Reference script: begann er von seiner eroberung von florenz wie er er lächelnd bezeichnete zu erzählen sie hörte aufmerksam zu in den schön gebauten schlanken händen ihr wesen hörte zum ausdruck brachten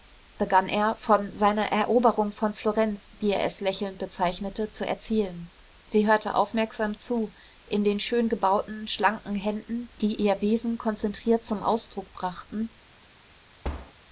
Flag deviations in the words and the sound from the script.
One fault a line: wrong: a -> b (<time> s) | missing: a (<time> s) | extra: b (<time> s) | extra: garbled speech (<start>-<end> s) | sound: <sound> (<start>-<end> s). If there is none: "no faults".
wrong: er -> es (3.5 s)
extra: die (10.0 s)
wrong: hörte -> konzentriert (10.8 s)
sound: thud (13.6-13.9 s)